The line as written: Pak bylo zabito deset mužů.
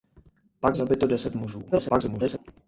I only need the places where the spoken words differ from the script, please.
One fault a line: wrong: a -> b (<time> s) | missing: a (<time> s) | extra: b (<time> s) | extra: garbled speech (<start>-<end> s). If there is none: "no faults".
missing: bylo (0.8 s)
extra: garbled speech (1.7-2.4 s)